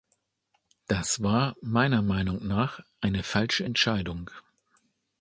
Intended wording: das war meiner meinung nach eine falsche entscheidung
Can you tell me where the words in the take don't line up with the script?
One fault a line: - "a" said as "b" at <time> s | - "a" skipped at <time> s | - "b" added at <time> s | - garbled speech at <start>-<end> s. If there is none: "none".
none